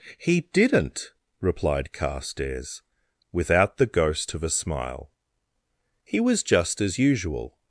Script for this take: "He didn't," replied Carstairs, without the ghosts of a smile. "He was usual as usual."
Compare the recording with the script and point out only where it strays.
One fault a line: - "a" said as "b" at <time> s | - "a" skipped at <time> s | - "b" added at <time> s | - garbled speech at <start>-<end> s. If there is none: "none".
- "ghosts" said as "ghost" at 3.9 s
- "usual" said as "just" at 6.4 s